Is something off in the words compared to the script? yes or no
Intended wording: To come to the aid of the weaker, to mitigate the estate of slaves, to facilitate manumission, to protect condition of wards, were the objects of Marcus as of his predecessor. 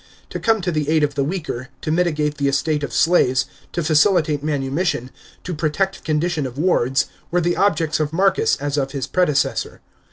no